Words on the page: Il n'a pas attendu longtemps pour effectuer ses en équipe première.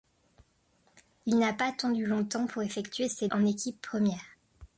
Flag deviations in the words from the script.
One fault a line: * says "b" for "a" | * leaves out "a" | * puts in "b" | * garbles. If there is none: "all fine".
all fine